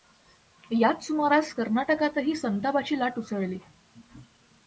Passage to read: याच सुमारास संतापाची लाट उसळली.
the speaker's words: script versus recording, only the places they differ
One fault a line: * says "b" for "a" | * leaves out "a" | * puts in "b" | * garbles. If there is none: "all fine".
* puts in "कर्नाटकातही"